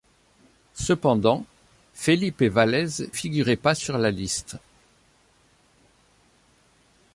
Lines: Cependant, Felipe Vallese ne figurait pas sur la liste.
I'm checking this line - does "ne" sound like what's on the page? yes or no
no